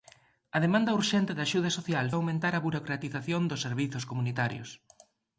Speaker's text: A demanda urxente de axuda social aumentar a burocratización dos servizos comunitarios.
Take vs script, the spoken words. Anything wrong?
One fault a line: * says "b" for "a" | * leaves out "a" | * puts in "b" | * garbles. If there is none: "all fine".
all fine